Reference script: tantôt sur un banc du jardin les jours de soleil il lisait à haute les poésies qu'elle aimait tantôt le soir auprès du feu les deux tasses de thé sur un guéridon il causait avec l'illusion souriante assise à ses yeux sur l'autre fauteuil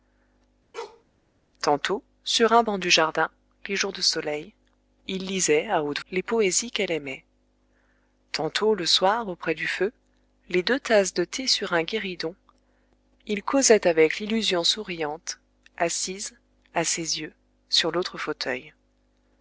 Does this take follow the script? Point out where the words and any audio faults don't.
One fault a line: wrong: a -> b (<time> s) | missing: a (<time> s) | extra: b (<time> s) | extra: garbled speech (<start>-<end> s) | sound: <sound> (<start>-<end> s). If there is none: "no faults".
sound: bark (0.7-1.0 s)